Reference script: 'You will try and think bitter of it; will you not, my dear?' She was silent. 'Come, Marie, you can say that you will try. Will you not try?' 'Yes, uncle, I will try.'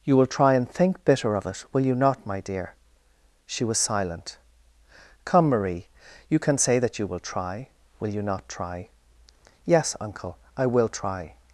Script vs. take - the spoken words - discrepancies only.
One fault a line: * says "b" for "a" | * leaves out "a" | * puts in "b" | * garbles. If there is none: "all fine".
all fine